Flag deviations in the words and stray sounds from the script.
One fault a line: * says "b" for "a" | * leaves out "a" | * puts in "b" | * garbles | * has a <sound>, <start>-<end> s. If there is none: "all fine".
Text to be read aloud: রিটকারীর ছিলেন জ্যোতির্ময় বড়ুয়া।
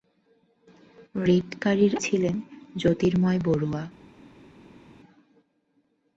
all fine